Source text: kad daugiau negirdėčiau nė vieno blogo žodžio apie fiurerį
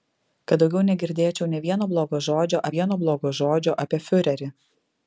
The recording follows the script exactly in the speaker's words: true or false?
false